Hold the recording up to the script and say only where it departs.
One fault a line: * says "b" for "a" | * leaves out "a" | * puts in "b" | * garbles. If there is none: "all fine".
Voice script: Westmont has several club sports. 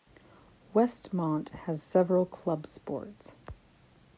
all fine